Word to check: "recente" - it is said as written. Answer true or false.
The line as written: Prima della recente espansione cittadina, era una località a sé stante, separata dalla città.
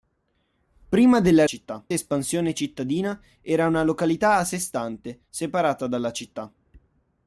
false